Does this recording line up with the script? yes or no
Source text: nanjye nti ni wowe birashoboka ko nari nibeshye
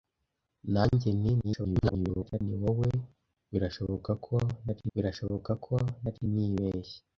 no